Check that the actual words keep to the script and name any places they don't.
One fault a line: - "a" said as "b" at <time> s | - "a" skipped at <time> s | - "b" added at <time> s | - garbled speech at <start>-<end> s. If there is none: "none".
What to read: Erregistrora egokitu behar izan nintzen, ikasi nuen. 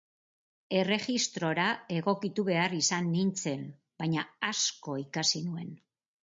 - "baina asko" added at 4.0 s